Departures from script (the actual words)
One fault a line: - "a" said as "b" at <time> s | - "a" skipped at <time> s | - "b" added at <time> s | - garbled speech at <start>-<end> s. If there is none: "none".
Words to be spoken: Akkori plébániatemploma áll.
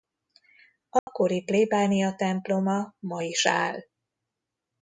- "ma is" added at 3.0 s